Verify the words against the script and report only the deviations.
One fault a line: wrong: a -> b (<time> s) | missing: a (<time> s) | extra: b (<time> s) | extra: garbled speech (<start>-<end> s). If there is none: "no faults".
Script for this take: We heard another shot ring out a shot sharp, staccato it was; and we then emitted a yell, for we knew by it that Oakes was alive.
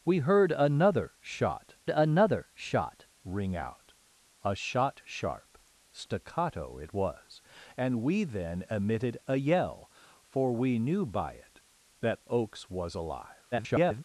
extra: another shot (1.9 s)
extra: garbled speech (13.5-14.0 s)